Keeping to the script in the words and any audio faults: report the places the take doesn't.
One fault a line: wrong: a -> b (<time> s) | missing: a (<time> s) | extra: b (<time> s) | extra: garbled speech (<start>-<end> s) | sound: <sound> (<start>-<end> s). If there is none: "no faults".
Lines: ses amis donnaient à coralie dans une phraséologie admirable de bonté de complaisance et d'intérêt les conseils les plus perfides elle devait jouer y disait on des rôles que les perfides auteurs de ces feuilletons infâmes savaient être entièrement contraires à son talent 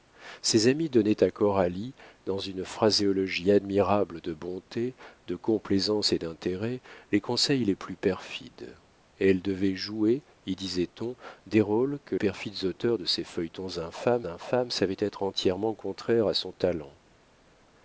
missing: les (12.2 s)
extra: infâmes (14.3 s)